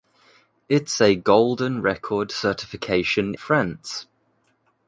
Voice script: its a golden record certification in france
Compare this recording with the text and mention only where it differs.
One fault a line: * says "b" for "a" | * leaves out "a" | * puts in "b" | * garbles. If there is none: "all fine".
* leaves out "in"